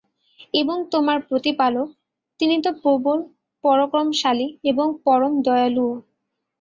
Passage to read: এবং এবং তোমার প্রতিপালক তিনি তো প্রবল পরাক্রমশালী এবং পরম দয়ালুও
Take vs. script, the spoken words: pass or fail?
fail